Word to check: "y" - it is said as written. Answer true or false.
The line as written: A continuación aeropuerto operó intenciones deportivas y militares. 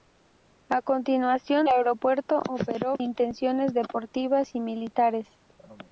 true